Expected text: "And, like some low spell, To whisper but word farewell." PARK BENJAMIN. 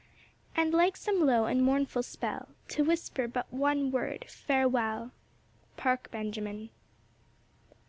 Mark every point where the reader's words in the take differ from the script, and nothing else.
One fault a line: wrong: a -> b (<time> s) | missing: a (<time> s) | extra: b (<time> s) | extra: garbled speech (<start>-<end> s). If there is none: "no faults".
extra: and mournful (1.4 s)
extra: one (3.5 s)